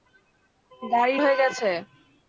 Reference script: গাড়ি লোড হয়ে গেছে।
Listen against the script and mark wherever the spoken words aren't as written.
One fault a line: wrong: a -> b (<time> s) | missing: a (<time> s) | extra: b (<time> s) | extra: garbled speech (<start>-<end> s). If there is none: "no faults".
missing: লোড (1.1 s)